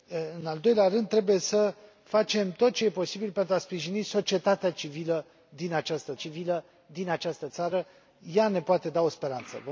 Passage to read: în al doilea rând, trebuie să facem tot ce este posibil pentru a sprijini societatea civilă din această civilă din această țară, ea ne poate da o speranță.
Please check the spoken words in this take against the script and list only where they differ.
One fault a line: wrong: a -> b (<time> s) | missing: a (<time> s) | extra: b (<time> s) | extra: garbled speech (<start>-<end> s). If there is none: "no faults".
no faults